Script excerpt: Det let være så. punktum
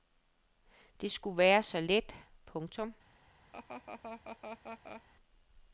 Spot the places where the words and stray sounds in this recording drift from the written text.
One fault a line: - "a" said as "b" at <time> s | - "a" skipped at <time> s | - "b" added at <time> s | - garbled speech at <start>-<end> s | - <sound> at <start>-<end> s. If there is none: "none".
- "let" said as "skulle" at 1.1 s
- "let" added at 1.8 s
- laugh at 3.5-5.0 s